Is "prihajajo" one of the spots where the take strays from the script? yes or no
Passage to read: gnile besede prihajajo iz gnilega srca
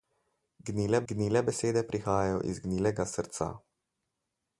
no